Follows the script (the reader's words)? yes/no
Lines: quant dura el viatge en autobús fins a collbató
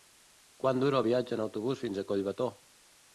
yes